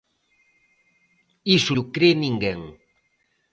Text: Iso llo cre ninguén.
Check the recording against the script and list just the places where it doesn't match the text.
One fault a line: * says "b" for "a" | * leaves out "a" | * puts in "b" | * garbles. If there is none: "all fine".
all fine